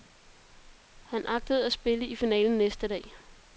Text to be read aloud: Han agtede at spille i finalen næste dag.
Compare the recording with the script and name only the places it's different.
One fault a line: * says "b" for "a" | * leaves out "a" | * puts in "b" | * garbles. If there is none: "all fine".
all fine